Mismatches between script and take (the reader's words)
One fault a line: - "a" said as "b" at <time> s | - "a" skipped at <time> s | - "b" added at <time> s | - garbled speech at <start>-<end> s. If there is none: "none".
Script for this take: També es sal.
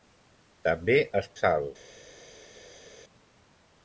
none